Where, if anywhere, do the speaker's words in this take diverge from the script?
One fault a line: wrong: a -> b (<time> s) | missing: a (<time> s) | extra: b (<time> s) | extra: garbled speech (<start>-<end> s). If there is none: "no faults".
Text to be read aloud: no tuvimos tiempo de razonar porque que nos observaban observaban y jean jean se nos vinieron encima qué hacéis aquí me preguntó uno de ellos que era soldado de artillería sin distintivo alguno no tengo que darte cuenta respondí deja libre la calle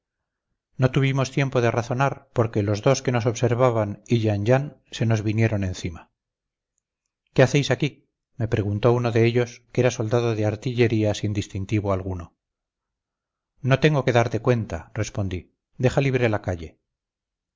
extra: los dos (2.6 s)
missing: observaban (4.0 s)